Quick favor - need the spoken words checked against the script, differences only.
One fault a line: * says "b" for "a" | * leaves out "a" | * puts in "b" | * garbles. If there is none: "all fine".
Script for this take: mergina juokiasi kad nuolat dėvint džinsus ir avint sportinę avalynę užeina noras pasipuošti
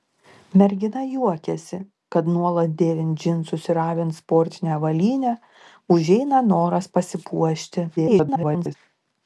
* garbles